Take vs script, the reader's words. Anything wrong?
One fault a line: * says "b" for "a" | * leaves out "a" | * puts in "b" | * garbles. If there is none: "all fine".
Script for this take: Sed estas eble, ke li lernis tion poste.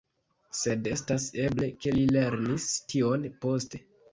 all fine